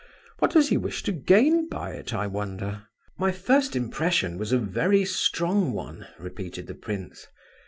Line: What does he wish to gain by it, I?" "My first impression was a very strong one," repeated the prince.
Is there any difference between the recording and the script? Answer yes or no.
yes